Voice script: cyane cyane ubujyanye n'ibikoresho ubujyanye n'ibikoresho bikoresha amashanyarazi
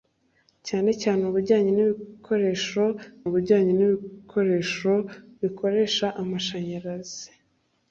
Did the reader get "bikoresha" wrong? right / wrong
right